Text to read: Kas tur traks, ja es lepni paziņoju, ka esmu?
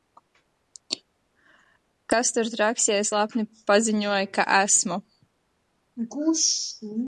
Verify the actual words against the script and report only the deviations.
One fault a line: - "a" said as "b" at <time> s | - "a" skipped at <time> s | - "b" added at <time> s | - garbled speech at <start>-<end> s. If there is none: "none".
none